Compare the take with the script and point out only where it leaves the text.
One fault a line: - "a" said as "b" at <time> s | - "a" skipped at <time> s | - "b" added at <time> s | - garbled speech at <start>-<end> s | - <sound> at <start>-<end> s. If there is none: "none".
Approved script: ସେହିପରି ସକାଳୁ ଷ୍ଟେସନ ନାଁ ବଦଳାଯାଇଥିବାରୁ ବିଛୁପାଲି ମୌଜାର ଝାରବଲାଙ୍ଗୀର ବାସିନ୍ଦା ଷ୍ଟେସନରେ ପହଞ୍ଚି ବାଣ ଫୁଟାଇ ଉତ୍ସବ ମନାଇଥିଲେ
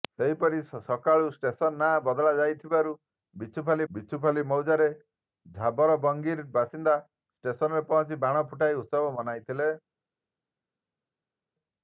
- "ବିଛୁପାଲି" added at 3.9 s